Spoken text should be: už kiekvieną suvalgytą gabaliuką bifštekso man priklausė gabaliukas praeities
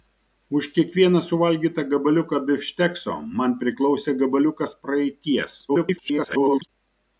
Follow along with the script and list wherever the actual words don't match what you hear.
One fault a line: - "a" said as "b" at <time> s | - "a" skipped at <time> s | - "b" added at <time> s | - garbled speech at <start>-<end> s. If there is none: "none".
- garbled speech at 5.7-6.7 s